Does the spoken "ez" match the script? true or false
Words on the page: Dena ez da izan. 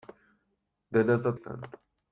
true